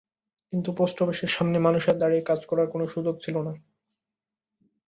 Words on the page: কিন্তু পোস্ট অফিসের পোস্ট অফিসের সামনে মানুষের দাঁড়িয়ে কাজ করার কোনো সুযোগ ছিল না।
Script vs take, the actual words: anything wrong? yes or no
yes